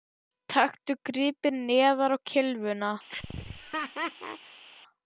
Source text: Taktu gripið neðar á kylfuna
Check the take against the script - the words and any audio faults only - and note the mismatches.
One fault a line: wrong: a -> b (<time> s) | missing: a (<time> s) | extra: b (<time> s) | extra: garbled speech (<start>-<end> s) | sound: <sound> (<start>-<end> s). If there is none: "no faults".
sound: laugh (3.1-4.6 s)